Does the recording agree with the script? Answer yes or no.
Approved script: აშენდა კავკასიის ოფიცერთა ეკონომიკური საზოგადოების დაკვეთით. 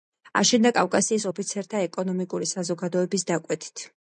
yes